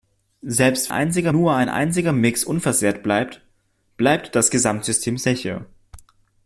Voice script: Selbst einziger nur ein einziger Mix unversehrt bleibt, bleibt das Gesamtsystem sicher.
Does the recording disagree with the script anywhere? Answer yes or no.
no